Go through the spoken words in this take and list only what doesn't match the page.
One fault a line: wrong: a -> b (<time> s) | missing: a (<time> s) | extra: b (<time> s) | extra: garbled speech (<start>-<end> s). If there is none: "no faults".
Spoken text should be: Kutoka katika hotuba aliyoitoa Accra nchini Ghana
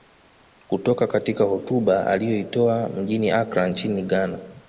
extra: mjini (2.9 s)